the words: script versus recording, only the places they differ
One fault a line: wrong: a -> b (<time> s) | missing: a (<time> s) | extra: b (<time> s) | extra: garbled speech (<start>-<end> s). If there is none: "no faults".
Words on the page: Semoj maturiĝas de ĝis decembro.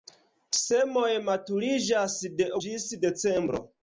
no faults